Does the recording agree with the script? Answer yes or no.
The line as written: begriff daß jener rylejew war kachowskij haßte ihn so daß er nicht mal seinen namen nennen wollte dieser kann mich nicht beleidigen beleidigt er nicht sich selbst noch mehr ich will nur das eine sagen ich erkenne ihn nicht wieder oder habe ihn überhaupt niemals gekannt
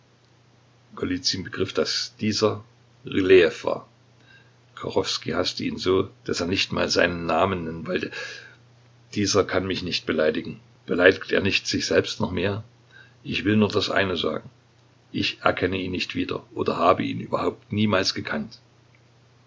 no